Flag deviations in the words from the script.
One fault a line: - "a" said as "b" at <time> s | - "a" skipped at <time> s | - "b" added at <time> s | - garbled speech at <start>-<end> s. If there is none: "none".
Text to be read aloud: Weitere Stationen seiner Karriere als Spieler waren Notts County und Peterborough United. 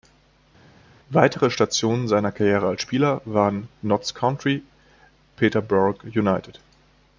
- "und" skipped at 4.6 s